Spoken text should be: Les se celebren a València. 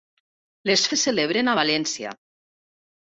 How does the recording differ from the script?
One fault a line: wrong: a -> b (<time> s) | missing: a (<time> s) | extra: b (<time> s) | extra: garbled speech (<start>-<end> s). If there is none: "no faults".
no faults